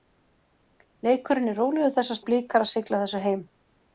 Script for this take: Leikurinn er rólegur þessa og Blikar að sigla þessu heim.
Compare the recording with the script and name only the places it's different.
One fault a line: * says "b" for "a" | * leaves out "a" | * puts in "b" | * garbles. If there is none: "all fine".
all fine